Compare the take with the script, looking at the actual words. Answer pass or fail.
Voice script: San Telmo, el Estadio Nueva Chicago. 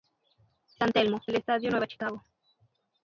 pass